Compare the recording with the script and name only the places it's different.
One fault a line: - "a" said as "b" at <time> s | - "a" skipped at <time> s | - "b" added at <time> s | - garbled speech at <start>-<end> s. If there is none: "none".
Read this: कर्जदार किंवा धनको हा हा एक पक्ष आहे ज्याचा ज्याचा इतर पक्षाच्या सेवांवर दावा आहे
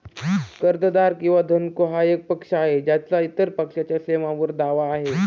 - "हा" skipped at 2.0 s
- "ज्याचा" skipped at 3.2 s